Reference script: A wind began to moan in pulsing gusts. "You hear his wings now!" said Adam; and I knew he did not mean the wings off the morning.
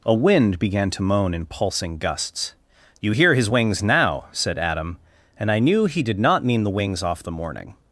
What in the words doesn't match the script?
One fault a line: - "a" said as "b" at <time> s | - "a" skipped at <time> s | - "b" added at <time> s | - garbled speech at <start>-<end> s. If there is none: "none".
none